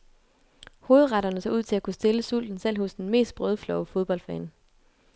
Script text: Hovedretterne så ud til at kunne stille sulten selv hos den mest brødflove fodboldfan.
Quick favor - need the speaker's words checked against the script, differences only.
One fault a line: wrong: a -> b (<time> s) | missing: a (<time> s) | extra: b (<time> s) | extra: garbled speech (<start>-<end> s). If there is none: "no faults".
no faults